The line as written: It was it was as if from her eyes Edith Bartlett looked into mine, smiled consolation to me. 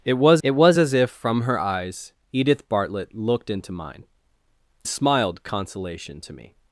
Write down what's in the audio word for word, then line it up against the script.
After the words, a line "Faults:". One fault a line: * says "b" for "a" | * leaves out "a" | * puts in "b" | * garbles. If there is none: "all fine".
It was it was as if from her eyes Edith Bartlett looked into mine, smiled consolation to me.
Faults:
all fine